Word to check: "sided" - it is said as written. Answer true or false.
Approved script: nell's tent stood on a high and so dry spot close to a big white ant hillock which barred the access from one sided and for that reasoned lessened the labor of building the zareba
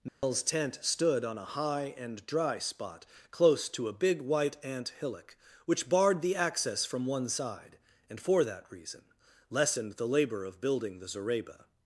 false